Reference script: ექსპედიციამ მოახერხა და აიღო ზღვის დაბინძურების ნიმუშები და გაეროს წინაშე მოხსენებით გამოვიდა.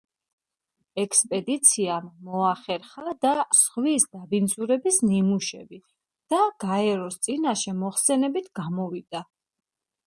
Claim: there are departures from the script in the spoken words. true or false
true